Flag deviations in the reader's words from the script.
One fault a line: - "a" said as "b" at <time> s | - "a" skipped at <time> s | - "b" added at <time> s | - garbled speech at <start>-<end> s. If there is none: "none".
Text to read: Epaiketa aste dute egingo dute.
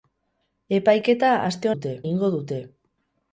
none